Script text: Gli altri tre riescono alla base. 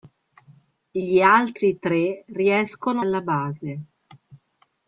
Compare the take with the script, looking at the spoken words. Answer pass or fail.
pass